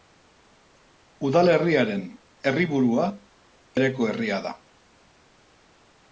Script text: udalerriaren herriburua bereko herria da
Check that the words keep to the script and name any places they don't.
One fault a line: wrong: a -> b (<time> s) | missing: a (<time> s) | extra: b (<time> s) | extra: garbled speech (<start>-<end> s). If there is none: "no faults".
no faults